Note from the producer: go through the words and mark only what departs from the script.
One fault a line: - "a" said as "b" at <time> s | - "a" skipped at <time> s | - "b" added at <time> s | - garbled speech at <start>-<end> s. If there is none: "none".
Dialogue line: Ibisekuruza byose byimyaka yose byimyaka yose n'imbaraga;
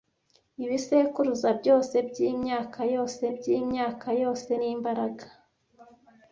none